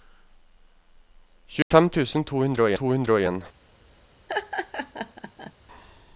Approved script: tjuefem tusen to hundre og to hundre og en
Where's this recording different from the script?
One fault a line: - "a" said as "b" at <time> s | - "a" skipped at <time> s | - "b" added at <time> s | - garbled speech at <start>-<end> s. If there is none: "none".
none